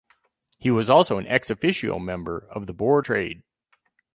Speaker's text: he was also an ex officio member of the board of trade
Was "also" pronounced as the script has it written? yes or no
yes